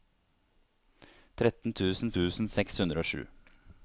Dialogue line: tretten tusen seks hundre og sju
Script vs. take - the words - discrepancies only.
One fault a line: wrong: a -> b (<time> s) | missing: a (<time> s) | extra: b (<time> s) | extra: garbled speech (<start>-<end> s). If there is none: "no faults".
extra: tusen (2.2 s)